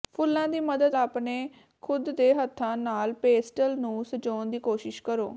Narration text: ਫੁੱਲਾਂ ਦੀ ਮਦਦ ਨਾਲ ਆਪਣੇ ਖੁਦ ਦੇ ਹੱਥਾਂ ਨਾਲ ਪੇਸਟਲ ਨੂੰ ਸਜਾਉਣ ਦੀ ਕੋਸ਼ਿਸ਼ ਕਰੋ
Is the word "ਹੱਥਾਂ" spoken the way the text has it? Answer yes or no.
yes